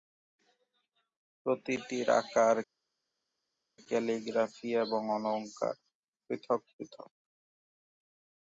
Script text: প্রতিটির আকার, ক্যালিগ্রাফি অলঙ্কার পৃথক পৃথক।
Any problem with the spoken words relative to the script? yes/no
yes